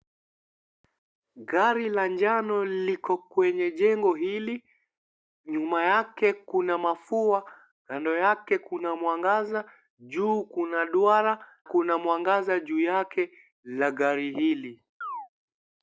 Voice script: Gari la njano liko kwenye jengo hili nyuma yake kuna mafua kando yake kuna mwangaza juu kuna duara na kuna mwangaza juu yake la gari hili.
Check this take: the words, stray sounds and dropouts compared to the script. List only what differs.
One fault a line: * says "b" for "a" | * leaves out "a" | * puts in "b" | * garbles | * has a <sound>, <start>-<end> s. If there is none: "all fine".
* leaves out "na"
* has a chirp, 15.0-15.3 s